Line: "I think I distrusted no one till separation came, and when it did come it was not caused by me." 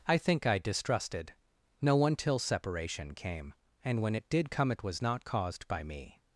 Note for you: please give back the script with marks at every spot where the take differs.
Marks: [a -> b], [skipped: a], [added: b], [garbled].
"I think I distrusted no one till separation came, and when it did come it was not caused by me."